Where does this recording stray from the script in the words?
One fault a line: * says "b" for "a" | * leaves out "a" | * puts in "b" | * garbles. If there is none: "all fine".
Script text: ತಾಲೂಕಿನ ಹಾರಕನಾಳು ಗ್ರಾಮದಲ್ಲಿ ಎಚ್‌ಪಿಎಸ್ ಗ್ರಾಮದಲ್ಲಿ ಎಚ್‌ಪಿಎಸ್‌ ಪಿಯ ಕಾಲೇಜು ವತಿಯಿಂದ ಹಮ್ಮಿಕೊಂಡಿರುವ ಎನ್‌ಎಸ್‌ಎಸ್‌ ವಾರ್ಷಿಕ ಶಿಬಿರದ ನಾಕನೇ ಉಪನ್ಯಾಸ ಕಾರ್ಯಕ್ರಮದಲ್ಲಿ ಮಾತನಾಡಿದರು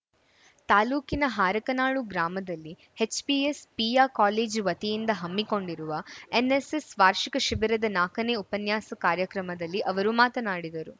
* leaves out "ಗ್ರಾಮದಲ್ಲಿ ಎಚ್‌ಪಿಎಸ್"
* puts in "ಅವರು"